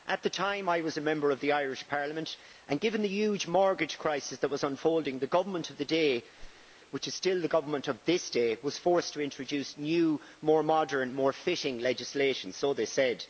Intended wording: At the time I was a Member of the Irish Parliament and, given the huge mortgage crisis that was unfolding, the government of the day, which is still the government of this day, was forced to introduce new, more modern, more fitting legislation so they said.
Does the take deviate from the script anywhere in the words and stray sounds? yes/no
yes